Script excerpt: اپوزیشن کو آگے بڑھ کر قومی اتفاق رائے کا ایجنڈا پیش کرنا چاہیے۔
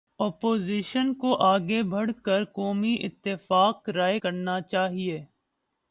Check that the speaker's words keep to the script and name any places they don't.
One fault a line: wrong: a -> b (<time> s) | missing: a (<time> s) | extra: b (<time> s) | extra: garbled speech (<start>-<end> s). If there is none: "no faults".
missing: کا ایجنڈا پیش (4.2 s)